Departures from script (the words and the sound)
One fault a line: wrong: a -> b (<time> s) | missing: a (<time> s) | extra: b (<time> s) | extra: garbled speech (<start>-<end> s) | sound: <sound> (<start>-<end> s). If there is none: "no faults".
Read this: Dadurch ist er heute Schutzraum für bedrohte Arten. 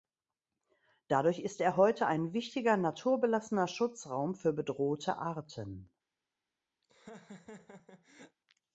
extra: ein wichtiger naturbelassener (2.1 s)
sound: laugh (6.8-8.4 s)